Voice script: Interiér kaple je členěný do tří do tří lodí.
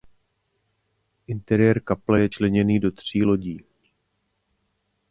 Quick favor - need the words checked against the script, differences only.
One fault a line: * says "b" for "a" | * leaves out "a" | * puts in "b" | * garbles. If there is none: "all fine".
* leaves out "do tří"